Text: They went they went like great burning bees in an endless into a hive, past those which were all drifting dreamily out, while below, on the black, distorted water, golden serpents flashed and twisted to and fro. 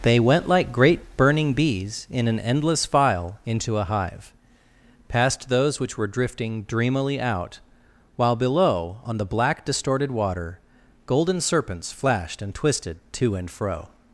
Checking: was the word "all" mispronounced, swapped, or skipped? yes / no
yes